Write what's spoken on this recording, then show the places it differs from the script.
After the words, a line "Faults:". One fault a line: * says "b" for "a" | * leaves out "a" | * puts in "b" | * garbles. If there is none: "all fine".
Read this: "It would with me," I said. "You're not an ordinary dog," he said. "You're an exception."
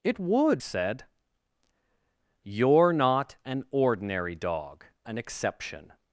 "It would said. "You're not an ordinary dog," an exception."
Faults:
* leaves out "with me I"
* leaves out "he said You're"